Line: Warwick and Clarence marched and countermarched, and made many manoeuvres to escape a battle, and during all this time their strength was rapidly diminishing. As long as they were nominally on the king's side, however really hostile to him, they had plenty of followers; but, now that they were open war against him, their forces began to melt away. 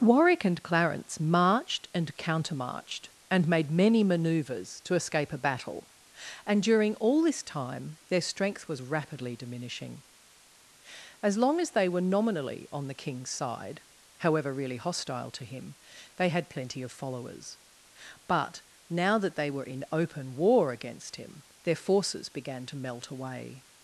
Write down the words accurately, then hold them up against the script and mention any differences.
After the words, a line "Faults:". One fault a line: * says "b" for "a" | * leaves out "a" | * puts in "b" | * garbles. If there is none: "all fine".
Warwick and Clarence marched and countermarched, and made many manoeuvres to escape a battle, and during all this time their strength was rapidly diminishing. As long as they were nominally on the king's side, however really hostile to him, they had plenty of followers; but, now that they were in open war against him, their forces began to melt away.
Faults:
* puts in "in"